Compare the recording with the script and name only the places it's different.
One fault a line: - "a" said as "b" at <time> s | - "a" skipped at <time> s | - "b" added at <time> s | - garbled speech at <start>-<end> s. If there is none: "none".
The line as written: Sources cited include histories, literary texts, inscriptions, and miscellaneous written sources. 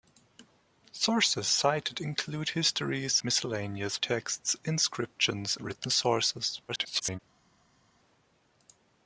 - "literary" said as "miscellaneous" at 3.2 s
- "and miscellaneous" skipped at 5.6 s
- garbled speech at 6.7-7.2 s